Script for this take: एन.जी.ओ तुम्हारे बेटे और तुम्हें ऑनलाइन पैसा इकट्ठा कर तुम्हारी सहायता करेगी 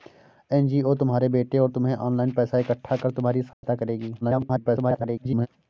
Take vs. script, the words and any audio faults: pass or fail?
fail